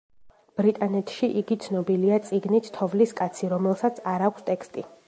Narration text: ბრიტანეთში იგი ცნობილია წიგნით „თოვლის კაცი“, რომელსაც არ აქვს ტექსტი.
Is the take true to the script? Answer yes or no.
yes